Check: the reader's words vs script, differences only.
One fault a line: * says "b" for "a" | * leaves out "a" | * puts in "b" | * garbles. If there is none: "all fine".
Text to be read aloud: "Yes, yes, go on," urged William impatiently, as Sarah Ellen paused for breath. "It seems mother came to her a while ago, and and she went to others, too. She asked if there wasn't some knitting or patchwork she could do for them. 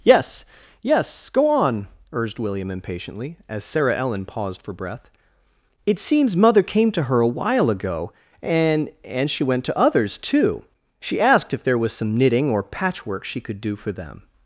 * says "was" for "wasn't"